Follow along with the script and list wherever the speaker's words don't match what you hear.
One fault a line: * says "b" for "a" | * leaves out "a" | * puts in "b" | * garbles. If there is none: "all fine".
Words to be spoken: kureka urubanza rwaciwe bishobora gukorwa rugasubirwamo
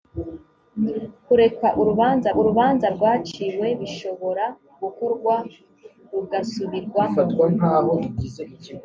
* puts in "urubanza"